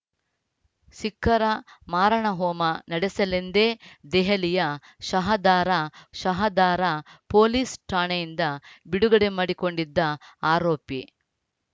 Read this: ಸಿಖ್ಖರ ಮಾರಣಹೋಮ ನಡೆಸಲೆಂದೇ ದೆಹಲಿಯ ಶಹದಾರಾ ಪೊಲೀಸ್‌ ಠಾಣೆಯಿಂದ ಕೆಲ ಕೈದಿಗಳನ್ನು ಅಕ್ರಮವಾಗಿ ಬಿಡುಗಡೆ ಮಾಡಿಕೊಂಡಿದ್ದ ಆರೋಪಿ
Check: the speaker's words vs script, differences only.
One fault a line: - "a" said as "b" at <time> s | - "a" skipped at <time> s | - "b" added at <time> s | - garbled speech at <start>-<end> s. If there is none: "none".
- "ಶಹದಾರಾ" added at 6.2 s
- "ಕೆಲ ಕೈದಿಗಳನ್ನು ಅಕ್ರಮವಾಗಿ" skipped at 8.5 s